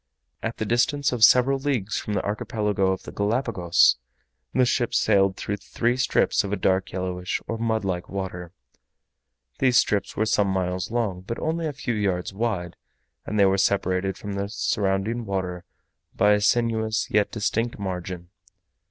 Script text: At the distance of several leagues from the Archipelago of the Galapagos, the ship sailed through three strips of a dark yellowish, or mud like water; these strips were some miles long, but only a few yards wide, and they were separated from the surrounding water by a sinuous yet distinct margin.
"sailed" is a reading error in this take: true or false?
false